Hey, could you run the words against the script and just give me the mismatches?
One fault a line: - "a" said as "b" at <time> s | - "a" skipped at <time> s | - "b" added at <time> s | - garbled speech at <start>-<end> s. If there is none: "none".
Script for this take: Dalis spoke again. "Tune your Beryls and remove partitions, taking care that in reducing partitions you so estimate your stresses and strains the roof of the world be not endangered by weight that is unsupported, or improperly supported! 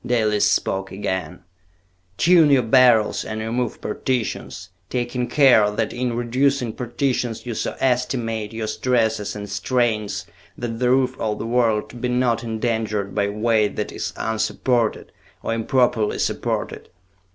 - "that" added at 10.6 s